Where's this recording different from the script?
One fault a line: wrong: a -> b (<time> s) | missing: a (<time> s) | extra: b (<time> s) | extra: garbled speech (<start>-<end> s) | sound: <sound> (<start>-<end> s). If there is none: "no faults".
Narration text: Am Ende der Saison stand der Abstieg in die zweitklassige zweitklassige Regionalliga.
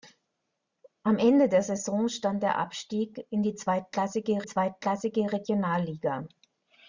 no faults